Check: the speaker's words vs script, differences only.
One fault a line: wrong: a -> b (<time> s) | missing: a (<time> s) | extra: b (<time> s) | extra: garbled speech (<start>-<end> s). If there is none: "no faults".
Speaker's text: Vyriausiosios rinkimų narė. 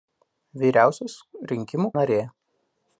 no faults